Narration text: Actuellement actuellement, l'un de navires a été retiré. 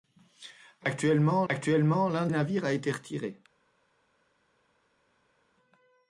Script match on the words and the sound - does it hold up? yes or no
yes